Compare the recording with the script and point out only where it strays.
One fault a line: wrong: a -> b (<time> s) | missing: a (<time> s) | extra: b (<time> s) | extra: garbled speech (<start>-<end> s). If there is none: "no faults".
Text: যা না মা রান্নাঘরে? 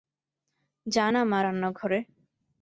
no faults